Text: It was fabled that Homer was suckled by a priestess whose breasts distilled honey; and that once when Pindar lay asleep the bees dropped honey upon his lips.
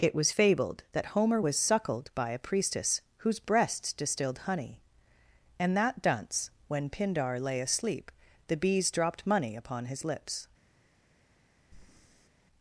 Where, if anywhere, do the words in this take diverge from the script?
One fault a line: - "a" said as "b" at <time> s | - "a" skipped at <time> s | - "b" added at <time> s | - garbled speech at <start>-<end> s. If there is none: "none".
- "once" said as "dunce" at 6.0 s
- "honey" said as "money" at 9.2 s